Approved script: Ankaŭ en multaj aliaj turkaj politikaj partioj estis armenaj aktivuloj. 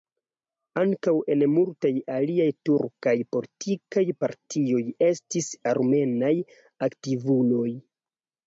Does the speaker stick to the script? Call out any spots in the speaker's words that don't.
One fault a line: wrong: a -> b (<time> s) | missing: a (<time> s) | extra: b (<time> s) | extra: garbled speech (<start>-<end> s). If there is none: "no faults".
no faults